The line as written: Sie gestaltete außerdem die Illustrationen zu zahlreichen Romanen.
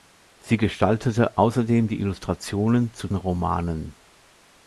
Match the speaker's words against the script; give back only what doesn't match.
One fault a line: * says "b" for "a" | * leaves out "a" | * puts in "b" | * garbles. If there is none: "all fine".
* leaves out "zahlreichen"